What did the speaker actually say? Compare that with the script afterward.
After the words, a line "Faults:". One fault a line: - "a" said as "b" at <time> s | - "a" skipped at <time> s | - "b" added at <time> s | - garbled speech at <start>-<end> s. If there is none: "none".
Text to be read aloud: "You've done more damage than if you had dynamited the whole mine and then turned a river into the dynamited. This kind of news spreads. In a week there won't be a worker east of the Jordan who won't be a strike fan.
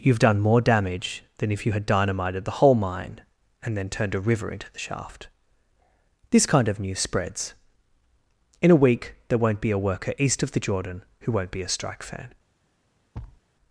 "You've done more damage than if you had dynamited the whole mine and then turned a river into the shaft. This kind of news spreads. In a week there won't be a worker east of the Jordan who won't be a strike fan.
Faults:
- "dynamited" said as "shaft" at 4.8 s